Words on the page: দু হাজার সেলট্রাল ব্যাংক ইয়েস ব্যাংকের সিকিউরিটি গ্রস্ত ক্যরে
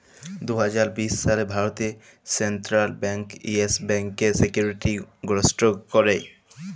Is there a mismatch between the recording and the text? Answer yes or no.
yes